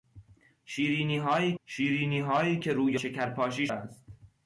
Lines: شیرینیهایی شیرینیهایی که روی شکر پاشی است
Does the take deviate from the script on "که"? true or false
false